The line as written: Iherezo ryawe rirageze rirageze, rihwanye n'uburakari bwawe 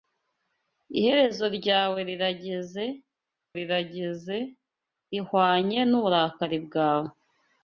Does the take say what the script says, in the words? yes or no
yes